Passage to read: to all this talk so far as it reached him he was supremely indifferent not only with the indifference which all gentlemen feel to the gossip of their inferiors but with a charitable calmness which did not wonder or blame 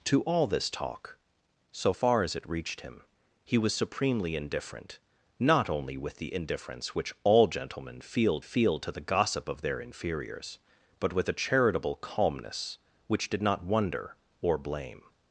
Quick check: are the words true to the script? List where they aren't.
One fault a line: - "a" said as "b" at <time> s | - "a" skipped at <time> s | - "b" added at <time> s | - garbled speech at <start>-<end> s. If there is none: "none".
- "feel" added at 8.4 s